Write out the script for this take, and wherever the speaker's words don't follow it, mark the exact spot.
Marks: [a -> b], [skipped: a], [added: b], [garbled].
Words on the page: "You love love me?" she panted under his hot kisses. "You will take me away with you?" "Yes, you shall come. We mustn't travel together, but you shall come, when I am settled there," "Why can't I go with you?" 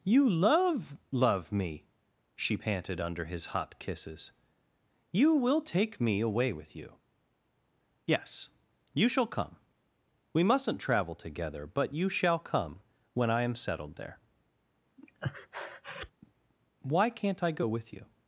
"You love love me?" she panted under his hot kisses. "You will take me away with you?" "Yes, you shall come. We mustn't travel together, but you shall come, when I am settled there," "Why can't I go with you?"